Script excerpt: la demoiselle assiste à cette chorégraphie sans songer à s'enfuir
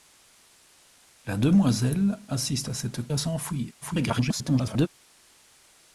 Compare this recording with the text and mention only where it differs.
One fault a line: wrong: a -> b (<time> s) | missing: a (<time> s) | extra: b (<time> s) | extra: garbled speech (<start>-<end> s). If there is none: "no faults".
missing: chorégraphie sans songer (3.1 s)
extra: garbled speech (3.8-4.9 s)